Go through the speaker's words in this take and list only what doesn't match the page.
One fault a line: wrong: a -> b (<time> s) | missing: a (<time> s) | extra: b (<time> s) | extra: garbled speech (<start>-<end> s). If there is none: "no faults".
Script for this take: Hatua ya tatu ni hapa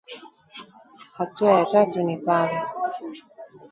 wrong: hapa -> pale (2.2 s)